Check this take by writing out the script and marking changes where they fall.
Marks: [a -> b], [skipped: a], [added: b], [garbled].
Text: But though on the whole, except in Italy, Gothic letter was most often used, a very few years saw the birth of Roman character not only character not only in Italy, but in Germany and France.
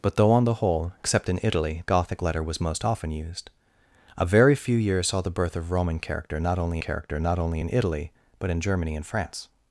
But though on the whole, except in Italy, Gothic letter was most often used, a very few years saw the birth of Roman character not only character not only in Italy, but in Germany and France.